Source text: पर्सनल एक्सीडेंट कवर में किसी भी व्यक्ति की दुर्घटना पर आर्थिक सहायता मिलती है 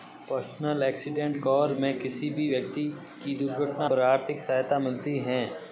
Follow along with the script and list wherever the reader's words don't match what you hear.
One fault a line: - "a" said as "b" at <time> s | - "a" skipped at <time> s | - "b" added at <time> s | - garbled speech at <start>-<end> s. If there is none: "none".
none